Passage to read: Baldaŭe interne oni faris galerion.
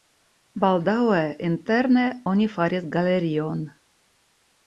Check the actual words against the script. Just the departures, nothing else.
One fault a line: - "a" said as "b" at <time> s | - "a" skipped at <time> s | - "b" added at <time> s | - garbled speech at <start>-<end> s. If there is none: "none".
none